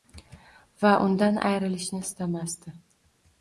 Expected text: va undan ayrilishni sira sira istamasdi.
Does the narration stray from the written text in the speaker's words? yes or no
yes